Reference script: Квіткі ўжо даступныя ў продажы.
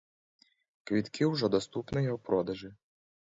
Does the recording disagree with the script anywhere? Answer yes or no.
no